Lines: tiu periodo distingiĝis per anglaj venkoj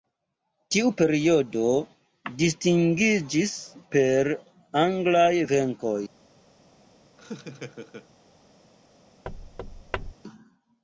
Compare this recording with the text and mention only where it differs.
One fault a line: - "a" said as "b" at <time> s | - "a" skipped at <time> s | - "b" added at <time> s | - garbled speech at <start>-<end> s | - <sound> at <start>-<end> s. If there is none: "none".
- laugh at 7.2-8.1 s
- thud at 9.2-10.1 s